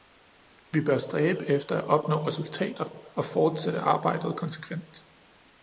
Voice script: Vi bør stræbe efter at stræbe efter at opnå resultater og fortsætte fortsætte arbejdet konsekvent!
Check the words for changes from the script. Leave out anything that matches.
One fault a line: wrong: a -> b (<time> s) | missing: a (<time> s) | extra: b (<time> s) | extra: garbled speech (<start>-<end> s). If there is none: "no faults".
missing: stræbe efter at (1.8 s)
missing: fortsætte (3.8 s)